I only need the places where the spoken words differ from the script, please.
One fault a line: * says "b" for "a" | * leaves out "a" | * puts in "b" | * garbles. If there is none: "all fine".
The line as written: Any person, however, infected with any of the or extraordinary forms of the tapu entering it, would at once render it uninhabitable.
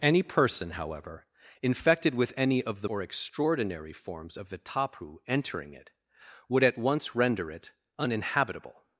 all fine